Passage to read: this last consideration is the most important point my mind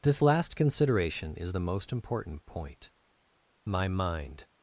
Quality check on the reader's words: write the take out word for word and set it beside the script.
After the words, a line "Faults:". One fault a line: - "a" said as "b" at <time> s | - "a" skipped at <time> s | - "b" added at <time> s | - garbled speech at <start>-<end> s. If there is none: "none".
this last consideration is the most important point my mind
Faults:
none